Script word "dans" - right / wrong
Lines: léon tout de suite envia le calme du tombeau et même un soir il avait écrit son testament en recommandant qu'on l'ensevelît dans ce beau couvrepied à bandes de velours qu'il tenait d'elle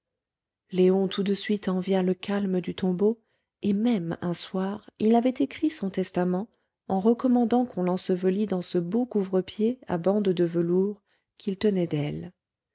right